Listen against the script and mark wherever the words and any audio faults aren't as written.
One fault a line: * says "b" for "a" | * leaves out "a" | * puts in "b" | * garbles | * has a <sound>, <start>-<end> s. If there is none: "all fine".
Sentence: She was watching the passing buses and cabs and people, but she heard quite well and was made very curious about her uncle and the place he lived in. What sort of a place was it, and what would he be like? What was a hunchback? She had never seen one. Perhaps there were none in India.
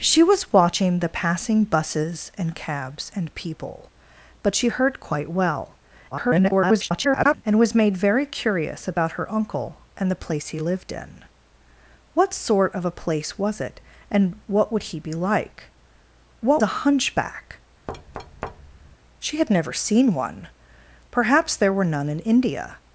* garbles
* leaves out "was"
* has a thud, 17.9-19.0 s